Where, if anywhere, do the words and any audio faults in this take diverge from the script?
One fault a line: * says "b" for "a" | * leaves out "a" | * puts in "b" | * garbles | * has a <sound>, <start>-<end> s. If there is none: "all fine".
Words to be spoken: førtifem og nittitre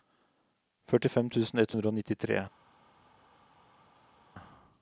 * puts in "tusen ett hundre"